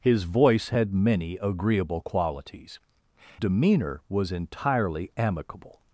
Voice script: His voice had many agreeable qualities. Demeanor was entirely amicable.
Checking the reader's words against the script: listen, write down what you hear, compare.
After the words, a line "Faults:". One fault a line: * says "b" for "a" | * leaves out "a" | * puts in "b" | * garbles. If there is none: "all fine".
His voice had many agreeable qualities. Demeanor was entirely amicable.
Faults:
all fine